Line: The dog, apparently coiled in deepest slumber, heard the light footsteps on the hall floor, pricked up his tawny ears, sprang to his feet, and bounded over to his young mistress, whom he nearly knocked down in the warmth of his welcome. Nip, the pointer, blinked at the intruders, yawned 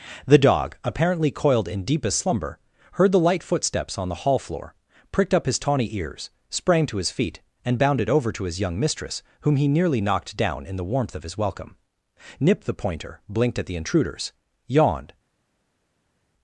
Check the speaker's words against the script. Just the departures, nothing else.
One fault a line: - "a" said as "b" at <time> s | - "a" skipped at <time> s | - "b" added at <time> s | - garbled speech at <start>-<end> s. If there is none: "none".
none